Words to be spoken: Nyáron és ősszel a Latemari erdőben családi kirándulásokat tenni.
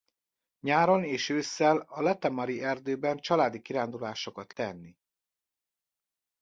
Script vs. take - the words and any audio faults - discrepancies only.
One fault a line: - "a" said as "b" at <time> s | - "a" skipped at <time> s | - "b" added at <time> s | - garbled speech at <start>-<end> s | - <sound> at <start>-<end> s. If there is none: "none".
none